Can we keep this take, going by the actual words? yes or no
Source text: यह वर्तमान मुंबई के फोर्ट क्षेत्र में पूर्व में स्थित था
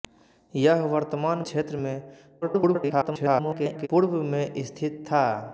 no